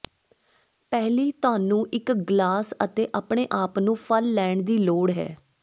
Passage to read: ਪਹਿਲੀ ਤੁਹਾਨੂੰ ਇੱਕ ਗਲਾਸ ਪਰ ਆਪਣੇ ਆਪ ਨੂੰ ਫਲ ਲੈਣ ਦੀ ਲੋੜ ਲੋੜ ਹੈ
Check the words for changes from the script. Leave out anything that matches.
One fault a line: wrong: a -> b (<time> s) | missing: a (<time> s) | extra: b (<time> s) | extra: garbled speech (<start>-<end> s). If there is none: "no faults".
wrong: ਪਰ -> ਅਤੇ (2.8 s)
missing: ਲੋੜ (5.1 s)